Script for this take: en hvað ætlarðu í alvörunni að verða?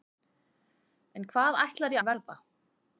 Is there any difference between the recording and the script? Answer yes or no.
yes